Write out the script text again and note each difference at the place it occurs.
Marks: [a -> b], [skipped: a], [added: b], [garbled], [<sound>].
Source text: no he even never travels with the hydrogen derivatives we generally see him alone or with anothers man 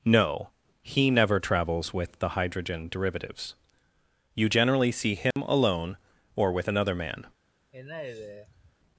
no he [skipped: even] never travels with the hydrogen derivatives [we -> you] generally see him [dropout] alone or with [anothers -> another] man [sigh]